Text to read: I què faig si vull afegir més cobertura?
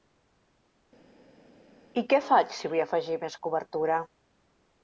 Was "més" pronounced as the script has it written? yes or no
yes